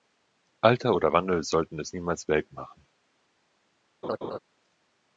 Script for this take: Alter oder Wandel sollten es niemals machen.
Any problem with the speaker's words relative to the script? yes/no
yes